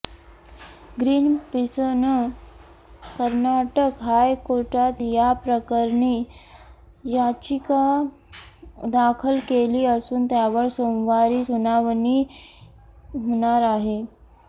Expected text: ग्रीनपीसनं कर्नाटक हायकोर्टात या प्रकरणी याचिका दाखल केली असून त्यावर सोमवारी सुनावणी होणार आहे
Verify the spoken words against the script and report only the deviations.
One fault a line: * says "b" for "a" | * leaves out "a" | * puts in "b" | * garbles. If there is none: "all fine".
all fine